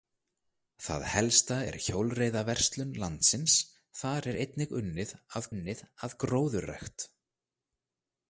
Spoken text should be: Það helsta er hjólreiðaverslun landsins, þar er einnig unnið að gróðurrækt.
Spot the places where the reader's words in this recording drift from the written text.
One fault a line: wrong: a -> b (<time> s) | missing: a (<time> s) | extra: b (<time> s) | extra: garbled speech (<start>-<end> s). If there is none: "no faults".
extra: unnið að (5.5 s)